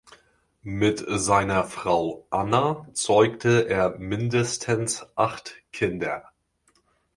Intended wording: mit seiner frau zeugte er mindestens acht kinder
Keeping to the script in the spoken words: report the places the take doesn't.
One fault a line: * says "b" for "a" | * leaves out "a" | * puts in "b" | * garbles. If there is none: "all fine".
* puts in "anna"